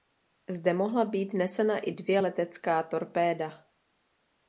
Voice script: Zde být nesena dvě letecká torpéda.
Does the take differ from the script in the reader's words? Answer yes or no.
yes